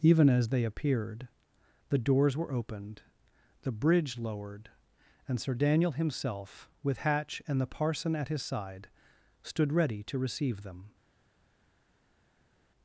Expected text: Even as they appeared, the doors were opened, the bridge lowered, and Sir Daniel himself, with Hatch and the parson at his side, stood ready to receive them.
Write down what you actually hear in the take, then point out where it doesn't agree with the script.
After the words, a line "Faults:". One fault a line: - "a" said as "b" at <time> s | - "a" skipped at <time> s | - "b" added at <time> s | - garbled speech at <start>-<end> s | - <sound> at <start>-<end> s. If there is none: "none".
Even as they appeared, the doors were opened, the bridge lowered, and Sir Daniel himself, with Hatch and the parson at his side, stood ready to receive them.
Faults:
none